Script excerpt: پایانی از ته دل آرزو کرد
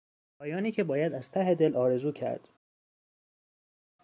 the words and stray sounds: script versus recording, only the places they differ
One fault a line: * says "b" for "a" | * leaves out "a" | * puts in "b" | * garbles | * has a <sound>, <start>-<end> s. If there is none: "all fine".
* puts in "که باید"